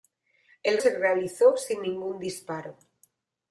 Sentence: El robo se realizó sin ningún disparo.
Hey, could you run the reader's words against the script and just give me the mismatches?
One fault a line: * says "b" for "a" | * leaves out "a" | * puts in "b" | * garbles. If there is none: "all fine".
* leaves out "robo"